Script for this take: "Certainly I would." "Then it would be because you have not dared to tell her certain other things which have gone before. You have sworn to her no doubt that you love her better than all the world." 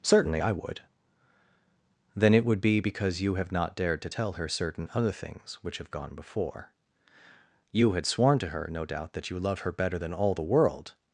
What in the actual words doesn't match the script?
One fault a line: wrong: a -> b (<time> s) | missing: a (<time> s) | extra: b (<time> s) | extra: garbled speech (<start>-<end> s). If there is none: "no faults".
wrong: have -> had (7.9 s)